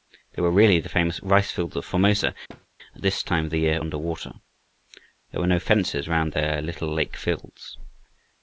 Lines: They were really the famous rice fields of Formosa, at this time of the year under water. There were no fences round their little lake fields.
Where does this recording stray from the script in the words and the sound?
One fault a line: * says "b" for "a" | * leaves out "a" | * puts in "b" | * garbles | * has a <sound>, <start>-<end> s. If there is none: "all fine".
* has a thud, 2.5-2.7 s